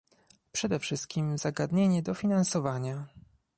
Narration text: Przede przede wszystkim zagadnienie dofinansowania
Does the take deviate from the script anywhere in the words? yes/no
yes